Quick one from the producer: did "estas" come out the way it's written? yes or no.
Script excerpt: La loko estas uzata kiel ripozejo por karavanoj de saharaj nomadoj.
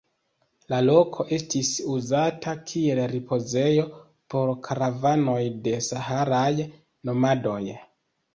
no